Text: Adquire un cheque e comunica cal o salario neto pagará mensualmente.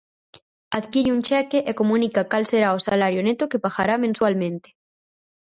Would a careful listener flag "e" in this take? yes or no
no